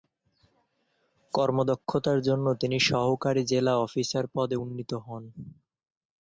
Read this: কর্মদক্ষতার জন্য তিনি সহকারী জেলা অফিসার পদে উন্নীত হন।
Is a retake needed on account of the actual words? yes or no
no